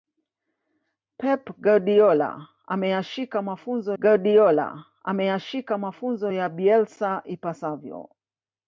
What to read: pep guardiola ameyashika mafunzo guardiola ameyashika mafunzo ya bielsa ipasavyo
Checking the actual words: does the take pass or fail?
pass